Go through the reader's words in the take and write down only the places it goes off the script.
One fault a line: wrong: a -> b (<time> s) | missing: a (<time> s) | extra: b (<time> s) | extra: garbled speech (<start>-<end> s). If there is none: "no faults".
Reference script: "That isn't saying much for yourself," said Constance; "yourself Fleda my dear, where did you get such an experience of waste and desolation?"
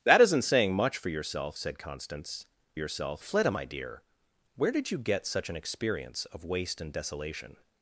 no faults